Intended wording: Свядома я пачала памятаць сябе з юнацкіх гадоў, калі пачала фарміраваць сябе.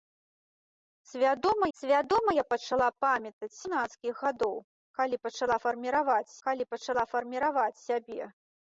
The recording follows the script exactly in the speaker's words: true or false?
false